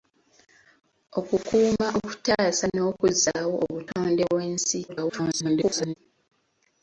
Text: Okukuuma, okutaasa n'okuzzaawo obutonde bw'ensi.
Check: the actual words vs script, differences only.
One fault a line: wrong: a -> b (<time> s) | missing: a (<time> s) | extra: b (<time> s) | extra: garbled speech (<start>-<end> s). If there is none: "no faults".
extra: garbled speech (4.9-5.9 s)